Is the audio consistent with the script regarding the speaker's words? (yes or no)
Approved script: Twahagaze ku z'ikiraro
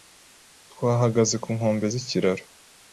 no